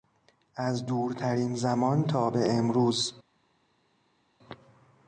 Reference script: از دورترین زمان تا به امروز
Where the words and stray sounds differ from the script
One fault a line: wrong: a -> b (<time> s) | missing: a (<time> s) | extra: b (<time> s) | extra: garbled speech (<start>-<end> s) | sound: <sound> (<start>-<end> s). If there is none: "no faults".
no faults